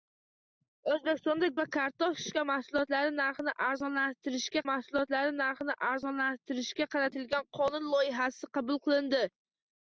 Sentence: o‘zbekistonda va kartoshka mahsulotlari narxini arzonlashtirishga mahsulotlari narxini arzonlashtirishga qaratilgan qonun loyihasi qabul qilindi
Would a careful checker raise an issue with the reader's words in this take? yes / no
no